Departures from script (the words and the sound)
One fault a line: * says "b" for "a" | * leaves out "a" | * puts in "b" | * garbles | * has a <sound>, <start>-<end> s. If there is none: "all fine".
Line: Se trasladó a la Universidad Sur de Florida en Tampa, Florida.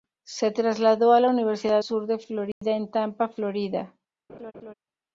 * has a dropout, 2.5-2.6 s
* has a laugh, 4.3-4.7 s